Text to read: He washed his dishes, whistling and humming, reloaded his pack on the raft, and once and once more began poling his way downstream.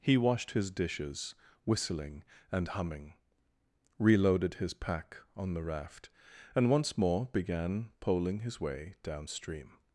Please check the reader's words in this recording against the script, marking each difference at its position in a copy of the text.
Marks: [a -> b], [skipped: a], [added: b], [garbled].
He washed his dishes, whistling and humming, reloaded his pack on the raft, and once [skipped: and once] more began poling his way downstream.